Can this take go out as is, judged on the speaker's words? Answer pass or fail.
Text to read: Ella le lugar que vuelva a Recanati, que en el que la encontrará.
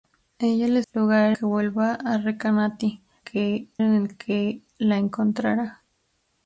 pass